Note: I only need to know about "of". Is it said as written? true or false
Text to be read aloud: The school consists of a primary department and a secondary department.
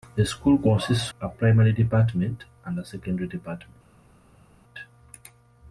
false